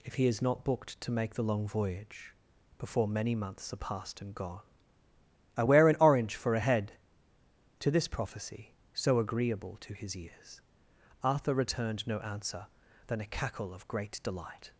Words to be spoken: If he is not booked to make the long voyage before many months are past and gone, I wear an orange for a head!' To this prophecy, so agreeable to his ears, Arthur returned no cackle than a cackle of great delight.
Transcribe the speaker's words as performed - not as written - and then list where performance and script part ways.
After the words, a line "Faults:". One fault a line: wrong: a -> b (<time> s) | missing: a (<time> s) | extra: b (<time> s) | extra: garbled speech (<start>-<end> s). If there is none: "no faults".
If he is not booked to make the long voyage before many months are past and gone, I wear an orange for a head!' To this prophecy, so agreeable to his ears, Arthur returned no answer than a cackle of great delight.
Faults:
wrong: cackle -> answer (12.2 s)